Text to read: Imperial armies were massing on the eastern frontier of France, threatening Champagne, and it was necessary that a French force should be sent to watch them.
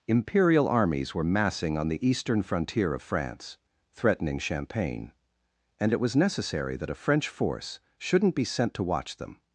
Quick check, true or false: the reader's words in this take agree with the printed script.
false